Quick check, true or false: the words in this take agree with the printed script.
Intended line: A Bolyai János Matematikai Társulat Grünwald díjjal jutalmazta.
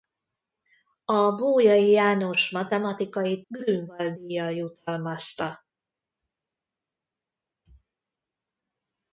false